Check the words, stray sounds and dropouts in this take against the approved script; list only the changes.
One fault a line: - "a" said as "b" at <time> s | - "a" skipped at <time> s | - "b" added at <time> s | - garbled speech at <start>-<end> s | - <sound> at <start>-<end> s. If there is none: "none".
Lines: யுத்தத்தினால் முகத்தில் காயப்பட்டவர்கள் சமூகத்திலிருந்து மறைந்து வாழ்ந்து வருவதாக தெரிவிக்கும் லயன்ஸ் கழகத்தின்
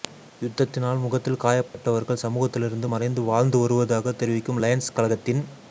- dropout at 1.7-1.7 s